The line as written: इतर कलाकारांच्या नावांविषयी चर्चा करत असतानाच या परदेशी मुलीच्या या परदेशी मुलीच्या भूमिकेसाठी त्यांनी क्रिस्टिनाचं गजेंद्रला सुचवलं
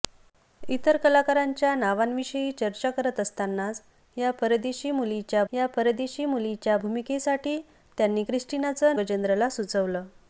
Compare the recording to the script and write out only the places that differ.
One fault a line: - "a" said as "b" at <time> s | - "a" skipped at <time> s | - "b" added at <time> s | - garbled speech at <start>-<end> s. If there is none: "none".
none